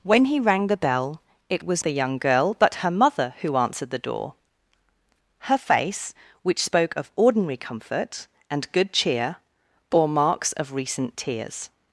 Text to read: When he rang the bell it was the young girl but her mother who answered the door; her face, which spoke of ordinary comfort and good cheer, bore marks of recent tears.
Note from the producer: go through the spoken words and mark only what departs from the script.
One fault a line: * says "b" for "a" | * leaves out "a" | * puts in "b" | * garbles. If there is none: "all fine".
all fine